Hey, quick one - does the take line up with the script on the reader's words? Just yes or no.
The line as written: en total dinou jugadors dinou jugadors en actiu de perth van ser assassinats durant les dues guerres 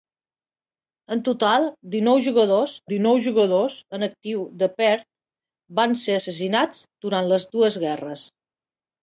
yes